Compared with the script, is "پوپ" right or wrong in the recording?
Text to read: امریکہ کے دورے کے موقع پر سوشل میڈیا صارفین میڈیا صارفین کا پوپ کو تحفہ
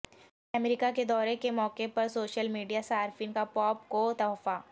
right